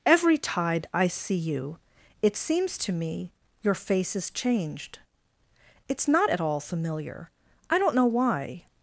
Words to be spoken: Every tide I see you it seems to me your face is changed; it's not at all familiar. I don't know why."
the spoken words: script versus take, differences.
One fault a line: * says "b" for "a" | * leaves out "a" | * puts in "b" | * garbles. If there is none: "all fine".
all fine